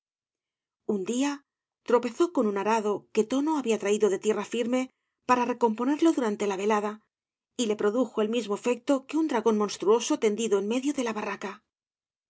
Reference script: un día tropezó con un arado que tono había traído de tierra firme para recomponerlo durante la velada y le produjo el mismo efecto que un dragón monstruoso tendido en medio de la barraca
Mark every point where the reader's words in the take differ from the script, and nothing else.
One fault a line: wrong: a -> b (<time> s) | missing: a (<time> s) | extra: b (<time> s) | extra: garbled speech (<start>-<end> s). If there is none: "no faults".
no faults